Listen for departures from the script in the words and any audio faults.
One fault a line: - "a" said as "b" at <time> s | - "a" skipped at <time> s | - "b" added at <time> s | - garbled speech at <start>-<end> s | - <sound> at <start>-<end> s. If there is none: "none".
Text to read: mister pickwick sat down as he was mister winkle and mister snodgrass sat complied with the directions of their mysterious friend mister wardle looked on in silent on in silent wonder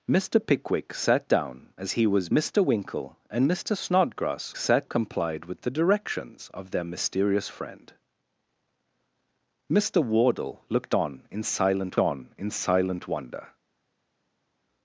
none